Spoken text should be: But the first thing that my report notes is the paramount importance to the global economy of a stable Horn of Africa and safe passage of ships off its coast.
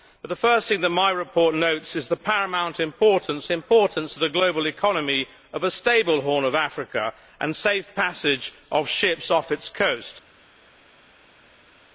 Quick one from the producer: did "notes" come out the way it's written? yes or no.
yes